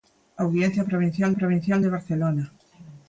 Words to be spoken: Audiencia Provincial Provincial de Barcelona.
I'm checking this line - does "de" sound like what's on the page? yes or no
yes